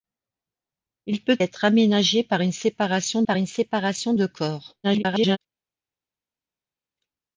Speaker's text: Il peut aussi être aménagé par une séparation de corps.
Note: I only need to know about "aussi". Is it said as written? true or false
false